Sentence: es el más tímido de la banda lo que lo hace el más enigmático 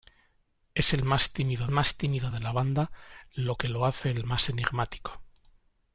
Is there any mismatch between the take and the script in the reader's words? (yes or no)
yes